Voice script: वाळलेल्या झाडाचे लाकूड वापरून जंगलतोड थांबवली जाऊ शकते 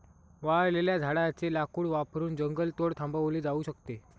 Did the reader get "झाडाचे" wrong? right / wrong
right